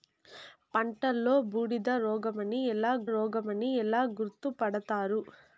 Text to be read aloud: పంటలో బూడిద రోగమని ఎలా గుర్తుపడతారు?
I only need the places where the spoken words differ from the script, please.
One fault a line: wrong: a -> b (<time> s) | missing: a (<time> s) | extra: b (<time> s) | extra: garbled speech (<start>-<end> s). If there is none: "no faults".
extra: రోగమని ఎలా (3.1 s)